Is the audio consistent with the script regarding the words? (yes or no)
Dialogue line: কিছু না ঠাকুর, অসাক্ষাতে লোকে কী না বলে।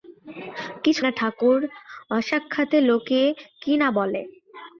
yes